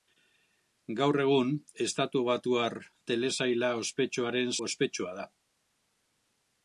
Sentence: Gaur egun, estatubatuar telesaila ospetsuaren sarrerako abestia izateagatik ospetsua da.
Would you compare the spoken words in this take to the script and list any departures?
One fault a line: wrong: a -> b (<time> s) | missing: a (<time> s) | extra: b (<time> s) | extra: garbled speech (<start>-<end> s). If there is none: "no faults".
missing: sarrerako abestia izateagatik (4.5 s)